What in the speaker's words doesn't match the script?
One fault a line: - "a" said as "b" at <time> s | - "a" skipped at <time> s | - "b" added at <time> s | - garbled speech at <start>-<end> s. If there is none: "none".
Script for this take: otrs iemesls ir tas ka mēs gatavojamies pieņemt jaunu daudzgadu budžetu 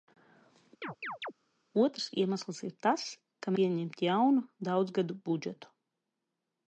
- "mēs gatavojamies" skipped at 3.5 s